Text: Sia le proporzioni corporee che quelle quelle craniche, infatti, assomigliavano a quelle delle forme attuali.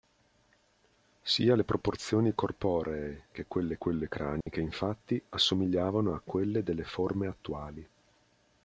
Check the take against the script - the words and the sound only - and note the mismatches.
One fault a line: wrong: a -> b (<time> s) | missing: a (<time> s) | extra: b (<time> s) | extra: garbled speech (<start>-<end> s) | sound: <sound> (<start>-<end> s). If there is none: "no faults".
sound: dropout (4.4-4.5 s)